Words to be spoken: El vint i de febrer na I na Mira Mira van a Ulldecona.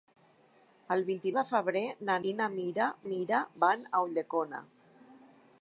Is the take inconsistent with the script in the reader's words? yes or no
no